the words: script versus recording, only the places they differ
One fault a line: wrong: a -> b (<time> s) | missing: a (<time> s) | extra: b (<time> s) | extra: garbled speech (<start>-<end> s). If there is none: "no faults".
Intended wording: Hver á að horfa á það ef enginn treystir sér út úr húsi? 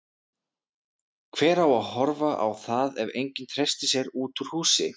no faults